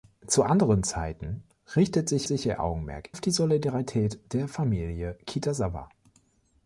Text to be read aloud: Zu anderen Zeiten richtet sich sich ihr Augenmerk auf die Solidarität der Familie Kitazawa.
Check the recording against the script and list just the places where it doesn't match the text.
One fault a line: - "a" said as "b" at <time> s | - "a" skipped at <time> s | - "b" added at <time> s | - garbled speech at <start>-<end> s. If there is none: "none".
none